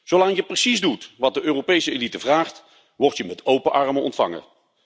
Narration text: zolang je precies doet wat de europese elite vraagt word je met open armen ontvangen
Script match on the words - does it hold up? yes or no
yes